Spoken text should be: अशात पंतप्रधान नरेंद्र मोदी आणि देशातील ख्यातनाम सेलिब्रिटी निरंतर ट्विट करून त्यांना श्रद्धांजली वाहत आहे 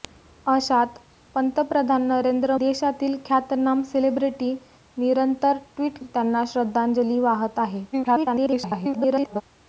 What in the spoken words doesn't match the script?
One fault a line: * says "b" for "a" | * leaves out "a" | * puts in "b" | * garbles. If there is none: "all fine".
* leaves out "मोदी आणि"
* leaves out "करून"
* garbles